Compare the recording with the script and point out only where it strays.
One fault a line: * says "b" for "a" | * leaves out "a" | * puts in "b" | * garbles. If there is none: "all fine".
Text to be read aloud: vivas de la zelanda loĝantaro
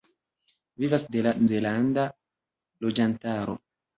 all fine